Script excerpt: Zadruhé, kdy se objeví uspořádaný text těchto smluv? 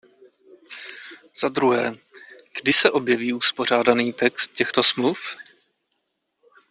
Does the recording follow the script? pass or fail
pass